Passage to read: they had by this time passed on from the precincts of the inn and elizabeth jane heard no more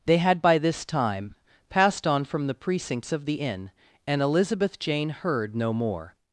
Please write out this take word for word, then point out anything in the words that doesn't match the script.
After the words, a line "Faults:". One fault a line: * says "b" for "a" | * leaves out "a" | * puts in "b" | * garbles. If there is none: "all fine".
they had by this time passed on from the precincts of the inn and elizabeth jane heard no more
Faults:
all fine